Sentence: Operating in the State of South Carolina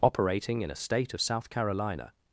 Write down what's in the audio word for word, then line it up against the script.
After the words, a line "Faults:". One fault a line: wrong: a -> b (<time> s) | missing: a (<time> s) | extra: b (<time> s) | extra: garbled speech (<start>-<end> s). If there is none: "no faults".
Operating in a State of South Carolina
Faults:
wrong: the -> a (0.7 s)